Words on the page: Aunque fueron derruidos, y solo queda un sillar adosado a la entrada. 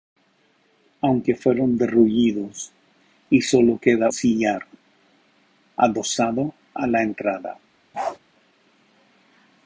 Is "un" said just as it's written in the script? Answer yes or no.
no